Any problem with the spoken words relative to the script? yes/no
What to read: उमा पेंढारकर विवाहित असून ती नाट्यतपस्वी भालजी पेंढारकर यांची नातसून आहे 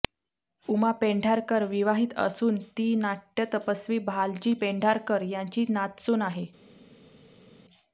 no